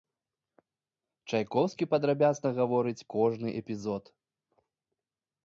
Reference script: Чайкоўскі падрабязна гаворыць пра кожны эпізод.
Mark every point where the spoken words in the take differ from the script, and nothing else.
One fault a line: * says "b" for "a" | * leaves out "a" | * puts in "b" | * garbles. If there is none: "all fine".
* leaves out "пра"